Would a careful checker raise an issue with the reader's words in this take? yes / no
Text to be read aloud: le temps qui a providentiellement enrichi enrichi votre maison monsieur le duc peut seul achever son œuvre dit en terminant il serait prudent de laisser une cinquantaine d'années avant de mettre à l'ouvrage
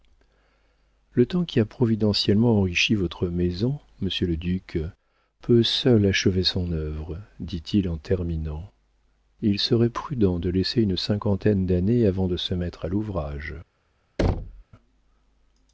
yes